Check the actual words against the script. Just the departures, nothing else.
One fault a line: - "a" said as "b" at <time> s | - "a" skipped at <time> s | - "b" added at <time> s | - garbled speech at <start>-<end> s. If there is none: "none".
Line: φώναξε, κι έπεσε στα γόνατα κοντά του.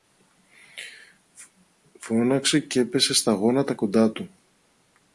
none